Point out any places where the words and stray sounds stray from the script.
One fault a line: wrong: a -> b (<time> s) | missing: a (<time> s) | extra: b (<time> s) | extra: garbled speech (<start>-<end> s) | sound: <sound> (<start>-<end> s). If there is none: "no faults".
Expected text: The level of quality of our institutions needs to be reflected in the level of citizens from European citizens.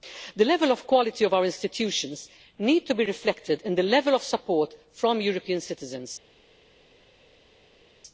wrong: citizens -> support (4.2 s)